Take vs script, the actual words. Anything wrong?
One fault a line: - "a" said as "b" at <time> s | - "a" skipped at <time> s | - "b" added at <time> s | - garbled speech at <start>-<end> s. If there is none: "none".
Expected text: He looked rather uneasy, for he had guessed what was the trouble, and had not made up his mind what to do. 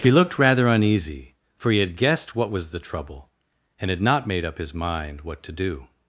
none